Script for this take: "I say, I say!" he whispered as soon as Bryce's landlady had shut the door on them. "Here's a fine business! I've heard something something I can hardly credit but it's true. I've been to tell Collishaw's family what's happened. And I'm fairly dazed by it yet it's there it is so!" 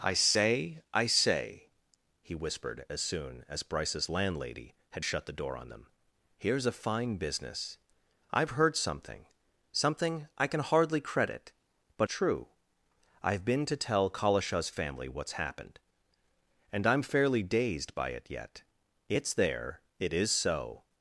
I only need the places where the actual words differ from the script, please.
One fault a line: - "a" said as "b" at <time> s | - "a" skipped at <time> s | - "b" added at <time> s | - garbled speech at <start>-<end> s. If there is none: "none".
- "it's" skipped at 12.1 s